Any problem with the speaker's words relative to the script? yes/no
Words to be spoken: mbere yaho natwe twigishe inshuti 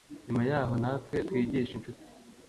yes